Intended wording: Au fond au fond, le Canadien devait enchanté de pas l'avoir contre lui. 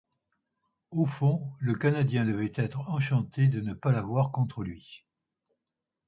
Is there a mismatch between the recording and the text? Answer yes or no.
yes